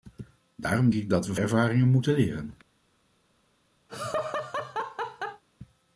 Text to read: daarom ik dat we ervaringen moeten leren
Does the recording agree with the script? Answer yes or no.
yes